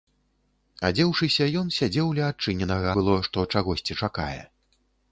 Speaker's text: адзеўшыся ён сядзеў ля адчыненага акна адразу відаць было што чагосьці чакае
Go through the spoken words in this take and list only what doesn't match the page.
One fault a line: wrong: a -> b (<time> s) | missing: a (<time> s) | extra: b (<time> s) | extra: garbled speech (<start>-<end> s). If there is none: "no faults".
missing: акна адразу відаць (2.9 s)